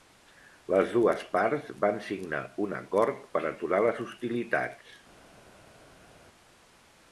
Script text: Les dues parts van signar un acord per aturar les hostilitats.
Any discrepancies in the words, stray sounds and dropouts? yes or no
no